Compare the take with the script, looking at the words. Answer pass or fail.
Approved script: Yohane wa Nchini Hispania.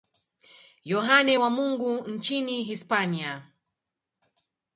fail